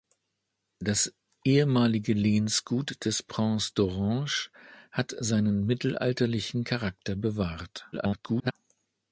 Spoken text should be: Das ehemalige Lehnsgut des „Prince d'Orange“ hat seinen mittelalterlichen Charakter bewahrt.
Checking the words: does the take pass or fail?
fail